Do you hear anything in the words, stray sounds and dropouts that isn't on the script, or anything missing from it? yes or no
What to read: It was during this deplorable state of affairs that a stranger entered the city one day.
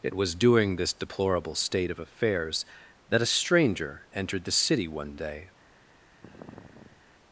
yes